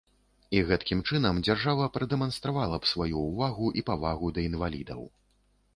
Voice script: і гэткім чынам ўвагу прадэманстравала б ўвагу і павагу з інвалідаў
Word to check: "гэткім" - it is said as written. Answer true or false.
true